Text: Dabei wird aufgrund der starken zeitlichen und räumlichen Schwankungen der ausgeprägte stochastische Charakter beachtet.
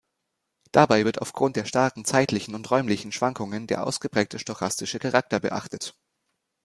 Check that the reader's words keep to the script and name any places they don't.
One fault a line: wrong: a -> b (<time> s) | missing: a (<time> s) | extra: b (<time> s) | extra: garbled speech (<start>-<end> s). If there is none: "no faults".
no faults